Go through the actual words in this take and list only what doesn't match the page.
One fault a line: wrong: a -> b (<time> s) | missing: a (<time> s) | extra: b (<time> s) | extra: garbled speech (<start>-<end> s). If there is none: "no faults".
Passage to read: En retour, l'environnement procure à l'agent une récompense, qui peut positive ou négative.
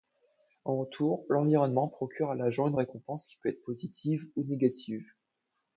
extra: être (3.5 s)